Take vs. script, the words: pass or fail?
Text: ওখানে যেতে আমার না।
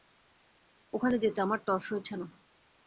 fail